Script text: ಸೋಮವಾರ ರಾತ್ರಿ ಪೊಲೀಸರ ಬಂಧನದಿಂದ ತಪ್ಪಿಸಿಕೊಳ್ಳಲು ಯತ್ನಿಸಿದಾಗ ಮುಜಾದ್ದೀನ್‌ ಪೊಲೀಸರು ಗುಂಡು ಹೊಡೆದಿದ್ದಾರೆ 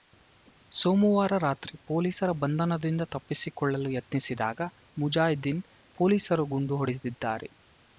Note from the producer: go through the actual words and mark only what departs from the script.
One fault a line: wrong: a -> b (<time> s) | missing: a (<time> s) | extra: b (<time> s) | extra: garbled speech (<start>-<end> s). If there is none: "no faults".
no faults